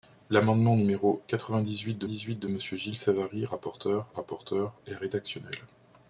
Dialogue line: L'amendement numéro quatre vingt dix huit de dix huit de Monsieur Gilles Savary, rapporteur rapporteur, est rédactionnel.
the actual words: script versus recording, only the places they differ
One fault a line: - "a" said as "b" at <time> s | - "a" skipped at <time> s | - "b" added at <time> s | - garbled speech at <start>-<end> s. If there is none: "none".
none